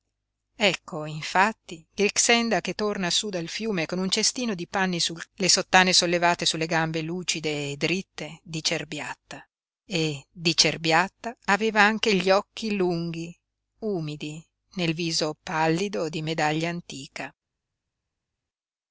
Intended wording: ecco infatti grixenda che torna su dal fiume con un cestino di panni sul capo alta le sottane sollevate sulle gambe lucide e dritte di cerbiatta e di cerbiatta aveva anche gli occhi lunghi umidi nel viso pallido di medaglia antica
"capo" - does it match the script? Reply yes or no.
no